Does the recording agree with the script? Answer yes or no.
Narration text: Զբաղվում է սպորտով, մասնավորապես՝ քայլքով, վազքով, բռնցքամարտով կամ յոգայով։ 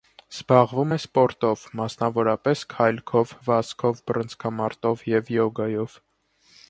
no